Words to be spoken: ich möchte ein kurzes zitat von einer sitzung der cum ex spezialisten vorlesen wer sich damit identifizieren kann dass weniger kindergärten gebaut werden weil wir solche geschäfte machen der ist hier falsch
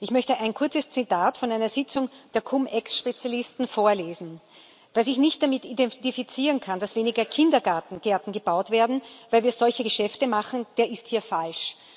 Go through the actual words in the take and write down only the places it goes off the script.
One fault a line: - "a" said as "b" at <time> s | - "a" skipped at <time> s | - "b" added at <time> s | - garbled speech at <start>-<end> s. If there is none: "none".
- "nicht" added at 5.2 s